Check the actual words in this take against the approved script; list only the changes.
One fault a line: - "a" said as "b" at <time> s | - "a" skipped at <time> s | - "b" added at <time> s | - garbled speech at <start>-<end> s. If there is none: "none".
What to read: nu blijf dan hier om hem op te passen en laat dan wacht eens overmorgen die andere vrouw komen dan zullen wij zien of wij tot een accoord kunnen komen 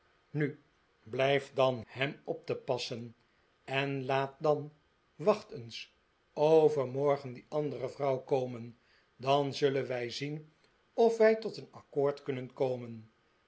- "hier om" skipped at 1.8 s